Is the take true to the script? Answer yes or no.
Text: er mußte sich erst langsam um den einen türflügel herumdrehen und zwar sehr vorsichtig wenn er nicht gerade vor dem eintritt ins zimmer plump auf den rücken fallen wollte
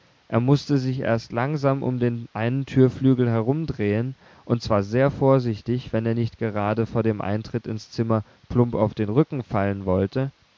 yes